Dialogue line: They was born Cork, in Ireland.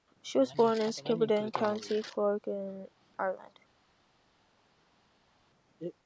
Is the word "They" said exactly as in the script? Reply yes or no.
no